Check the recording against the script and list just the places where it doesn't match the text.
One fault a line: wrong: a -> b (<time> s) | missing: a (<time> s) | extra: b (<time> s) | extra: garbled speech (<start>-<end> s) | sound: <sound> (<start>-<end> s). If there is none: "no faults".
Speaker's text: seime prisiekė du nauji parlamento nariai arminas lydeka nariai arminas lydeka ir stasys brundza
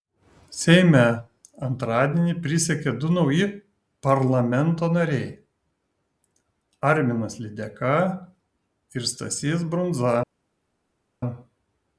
extra: antradienį (1.7 s)
missing: nariai arminas lydeka (7.9 s)